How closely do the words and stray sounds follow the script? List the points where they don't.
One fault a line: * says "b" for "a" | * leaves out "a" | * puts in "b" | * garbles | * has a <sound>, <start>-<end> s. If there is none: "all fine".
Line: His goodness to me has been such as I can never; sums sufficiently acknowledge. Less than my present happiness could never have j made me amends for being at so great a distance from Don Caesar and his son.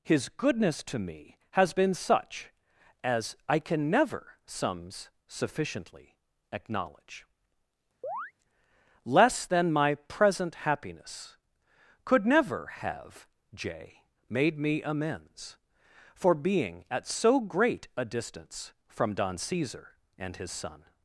* has a chirp, 8.0-8.3 s